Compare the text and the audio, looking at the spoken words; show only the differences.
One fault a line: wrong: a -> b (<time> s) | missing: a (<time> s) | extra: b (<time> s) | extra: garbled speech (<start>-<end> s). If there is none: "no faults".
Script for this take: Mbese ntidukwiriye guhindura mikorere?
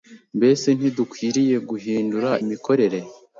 no faults